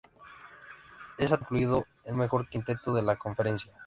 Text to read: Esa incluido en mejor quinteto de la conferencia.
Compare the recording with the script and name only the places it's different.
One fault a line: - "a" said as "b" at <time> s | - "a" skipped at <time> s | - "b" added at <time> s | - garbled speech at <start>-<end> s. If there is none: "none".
none